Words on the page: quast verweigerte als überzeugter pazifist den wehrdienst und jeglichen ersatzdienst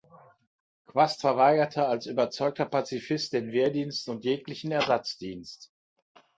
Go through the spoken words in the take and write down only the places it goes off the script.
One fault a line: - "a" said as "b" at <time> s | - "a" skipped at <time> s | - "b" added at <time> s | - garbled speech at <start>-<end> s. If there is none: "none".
none